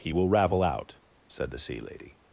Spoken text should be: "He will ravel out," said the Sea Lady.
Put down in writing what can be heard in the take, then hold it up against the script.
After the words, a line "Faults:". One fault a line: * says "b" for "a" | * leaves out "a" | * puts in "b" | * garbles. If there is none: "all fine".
"He will ravel out," said the Sea Lady.
Faults:
all fine